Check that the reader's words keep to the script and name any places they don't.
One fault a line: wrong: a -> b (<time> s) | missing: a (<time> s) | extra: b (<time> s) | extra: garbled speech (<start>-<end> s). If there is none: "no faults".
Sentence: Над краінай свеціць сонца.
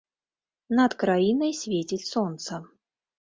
no faults